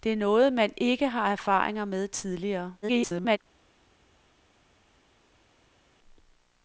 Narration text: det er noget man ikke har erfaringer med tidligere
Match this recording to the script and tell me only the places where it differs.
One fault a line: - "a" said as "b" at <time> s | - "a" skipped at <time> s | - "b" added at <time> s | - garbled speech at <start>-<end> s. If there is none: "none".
- garbled speech at 2.8-3.4 s